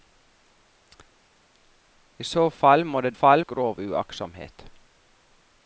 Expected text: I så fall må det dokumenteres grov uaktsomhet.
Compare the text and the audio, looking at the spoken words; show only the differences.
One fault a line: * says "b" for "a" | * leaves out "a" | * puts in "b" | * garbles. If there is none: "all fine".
* says "fall" for "dokumenteres"